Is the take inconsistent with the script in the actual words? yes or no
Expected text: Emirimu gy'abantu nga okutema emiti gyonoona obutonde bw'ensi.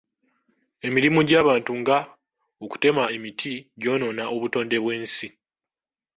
no